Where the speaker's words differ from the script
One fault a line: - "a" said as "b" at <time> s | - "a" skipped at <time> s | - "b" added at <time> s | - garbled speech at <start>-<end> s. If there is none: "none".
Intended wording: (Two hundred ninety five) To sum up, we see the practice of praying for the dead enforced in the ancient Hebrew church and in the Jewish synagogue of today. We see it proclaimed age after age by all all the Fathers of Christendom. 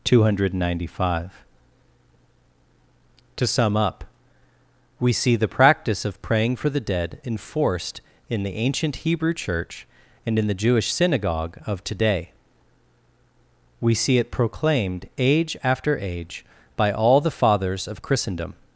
- "all" skipped at 17.2 s